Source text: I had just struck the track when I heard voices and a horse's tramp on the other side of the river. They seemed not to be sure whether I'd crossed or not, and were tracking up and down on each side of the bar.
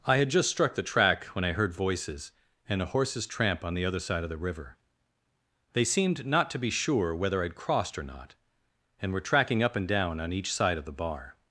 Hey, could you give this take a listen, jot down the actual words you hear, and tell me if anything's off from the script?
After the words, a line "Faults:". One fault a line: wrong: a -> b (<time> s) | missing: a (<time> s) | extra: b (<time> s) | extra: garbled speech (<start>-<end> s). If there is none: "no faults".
I had just struck the track when I heard voices and a horse's tramp on the other side of the river. They seemed not to be sure whether I'd crossed or not, and were tracking up and down on each side of the bar.
Faults:
no faults